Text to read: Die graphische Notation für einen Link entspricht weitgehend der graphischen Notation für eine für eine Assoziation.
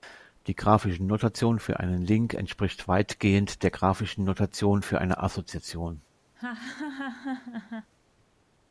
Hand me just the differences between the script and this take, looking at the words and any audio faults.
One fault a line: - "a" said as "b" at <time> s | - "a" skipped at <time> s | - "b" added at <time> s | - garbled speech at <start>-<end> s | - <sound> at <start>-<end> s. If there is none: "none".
- "für eine" skipped at 5.2 s
- laugh at 6.3-7.9 s